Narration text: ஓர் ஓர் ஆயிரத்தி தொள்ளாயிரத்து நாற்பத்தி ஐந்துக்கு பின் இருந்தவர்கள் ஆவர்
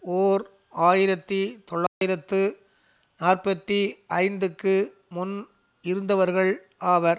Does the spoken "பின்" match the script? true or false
false